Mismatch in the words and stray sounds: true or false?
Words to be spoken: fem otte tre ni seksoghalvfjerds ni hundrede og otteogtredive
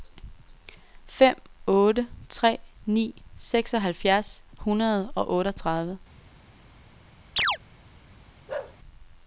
true